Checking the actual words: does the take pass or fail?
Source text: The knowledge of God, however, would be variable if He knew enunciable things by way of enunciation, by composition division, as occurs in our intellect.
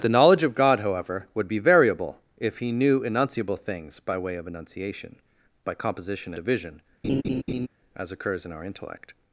pass